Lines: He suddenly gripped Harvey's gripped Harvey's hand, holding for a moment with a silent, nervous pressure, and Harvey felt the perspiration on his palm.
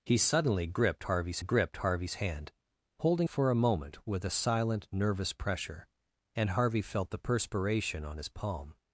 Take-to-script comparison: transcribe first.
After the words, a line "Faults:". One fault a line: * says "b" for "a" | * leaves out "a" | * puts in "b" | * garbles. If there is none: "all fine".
He suddenly gripped Harvey's gripped Harvey's hand, holding for a moment with a silent, nervous pressure, and Harvey felt the perspiration on his palm.
Faults:
all fine